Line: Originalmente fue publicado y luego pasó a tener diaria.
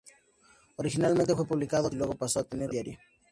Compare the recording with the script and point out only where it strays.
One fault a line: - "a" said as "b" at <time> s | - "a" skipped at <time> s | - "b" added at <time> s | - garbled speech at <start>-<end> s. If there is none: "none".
none